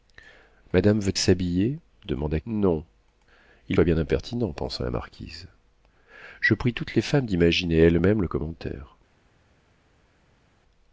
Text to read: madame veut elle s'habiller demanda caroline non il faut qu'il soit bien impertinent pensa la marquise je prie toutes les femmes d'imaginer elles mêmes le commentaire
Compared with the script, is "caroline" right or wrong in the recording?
wrong